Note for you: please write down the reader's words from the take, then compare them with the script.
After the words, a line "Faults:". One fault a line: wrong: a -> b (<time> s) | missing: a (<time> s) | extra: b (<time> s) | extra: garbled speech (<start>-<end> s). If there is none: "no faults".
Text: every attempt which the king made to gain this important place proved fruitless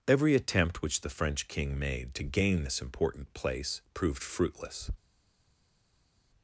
every attempt which the french king made to gain this important place proved fruitless
Faults:
extra: french (1.1 s)